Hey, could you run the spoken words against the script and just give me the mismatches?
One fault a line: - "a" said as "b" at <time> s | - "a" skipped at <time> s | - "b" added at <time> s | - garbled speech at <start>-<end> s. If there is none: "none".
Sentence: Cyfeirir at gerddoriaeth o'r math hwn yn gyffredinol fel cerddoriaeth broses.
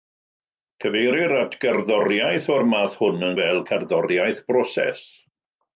- "gyffredinol" skipped at 3.4 s